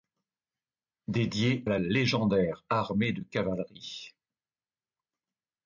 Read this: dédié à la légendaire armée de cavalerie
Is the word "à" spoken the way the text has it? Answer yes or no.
no